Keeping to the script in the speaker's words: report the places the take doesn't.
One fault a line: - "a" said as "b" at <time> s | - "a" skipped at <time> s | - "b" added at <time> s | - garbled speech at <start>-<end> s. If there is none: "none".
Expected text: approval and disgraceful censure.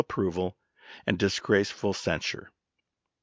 none